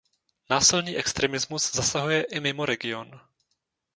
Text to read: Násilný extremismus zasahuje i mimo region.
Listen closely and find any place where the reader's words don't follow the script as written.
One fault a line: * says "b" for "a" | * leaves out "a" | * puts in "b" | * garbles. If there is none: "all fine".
all fine